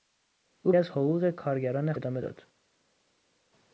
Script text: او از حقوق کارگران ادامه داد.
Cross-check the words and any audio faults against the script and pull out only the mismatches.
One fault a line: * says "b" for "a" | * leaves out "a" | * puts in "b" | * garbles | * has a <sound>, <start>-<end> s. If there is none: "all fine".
all fine